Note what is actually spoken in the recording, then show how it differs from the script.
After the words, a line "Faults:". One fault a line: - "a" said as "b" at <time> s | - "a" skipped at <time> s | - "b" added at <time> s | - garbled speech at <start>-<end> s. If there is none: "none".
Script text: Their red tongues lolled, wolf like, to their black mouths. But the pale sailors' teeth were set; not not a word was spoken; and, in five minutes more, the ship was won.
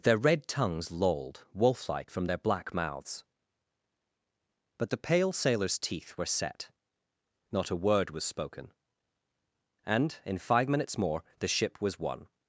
Their red tongues lolled, wolf like, from their black mouths. But the pale sailors' teeth were set; not a word was spoken; and, in five minutes more, the ship was won.
Faults:
- "to" said as "from" at 2.1 s
- "not" skipped at 7.7 s